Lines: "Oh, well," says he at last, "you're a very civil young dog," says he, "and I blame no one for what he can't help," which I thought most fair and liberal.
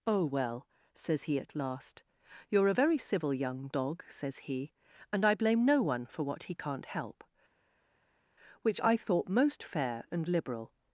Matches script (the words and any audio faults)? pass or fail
pass